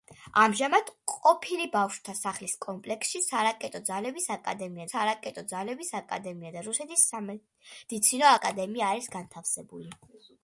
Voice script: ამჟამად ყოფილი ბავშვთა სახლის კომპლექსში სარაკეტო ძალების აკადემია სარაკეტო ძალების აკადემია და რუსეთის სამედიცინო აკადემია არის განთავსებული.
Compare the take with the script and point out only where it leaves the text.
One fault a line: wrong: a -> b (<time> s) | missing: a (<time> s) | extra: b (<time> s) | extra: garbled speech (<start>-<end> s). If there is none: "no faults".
no faults